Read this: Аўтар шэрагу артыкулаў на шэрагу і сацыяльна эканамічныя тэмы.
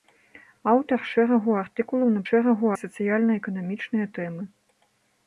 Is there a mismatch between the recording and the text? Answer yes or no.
no